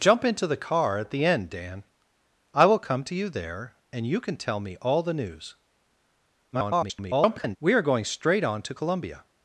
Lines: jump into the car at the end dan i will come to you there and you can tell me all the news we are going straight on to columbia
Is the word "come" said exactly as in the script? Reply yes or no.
yes